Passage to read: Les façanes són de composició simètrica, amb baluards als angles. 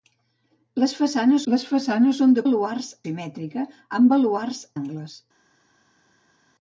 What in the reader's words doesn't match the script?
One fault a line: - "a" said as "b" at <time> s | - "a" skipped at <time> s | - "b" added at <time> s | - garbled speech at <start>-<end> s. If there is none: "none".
- "les façanes" added at 1.5 s
- "composició" said as "baluards" at 2.5 s
- "als" skipped at 4.7 s